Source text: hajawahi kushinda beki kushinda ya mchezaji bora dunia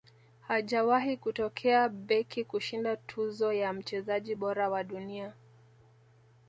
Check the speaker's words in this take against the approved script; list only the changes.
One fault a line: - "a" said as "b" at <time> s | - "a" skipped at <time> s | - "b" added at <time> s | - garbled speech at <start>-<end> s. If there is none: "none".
- "kushinda" said as "kutokea" at 1.2 s
- "tuzo" added at 3.0 s
- "wa" added at 4.7 s